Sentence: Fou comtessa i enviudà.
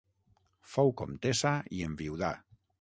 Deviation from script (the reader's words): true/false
false